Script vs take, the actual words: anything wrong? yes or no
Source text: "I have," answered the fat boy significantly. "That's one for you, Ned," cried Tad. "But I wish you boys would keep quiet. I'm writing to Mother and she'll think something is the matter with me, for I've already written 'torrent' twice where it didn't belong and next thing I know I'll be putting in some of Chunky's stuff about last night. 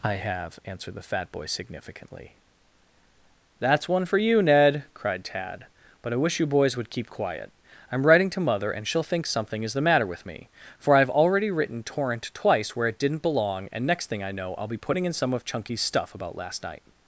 no